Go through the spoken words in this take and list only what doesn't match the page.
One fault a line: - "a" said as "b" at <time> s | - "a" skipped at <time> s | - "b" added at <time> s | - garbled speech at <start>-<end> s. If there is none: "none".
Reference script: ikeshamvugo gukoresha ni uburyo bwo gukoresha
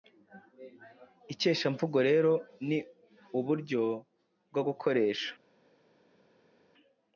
- "gukoresha" said as "rero" at 2.1 s